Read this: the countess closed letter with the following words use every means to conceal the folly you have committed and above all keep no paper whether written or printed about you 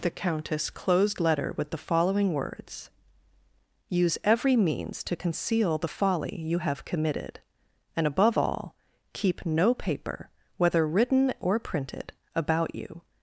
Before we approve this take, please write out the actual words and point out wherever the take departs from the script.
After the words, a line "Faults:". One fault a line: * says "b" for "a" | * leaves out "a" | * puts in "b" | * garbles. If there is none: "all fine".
the countess closed letter with the following words use every means to conceal the folly you have committed and above all keep no paper whether written or printed about you
Faults:
all fine